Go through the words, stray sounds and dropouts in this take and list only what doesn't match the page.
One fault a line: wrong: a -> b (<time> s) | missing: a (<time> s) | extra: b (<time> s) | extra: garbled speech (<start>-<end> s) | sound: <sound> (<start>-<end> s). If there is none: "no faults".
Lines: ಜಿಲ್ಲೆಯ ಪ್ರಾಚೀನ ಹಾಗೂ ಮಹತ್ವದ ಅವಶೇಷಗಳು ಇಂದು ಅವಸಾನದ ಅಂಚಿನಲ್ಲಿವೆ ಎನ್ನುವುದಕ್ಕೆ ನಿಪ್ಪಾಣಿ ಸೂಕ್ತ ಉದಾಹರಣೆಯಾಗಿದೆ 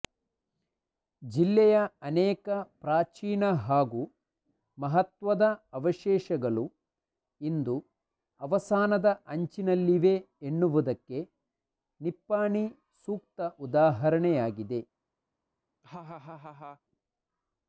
extra: ಅನೇಕ (2.0 s)
sound: laugh (15.8-16.8 s)